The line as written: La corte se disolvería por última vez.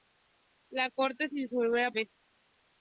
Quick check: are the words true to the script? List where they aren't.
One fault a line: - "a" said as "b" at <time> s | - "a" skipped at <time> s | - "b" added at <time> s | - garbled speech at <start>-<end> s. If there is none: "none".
- "por última" skipped at 1.9 s